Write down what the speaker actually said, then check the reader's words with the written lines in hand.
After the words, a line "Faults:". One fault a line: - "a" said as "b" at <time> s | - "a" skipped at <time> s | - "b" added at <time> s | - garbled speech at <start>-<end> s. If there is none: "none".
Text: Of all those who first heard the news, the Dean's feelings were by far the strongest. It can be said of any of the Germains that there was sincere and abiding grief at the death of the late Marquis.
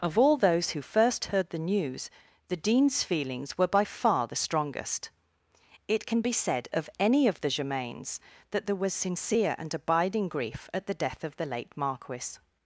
Of all those who first heard the news, the Dean's feelings were by far the strongest. It can be said of any of the Germains that there was sincere and abiding grief at the death of the late Marquis.
Faults:
none